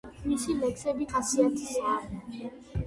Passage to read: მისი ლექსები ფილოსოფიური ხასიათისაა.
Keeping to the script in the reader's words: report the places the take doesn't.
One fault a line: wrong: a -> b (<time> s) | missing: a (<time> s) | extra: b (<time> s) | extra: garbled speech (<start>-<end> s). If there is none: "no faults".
missing: ფილოსოფიური (1.1 s)